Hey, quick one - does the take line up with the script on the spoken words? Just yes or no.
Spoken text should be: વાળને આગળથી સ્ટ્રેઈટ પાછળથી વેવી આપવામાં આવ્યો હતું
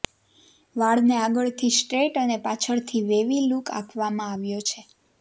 no